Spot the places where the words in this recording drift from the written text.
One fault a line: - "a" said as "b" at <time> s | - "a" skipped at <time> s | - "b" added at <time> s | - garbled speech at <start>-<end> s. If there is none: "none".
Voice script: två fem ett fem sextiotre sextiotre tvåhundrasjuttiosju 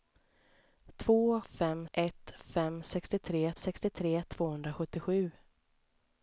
none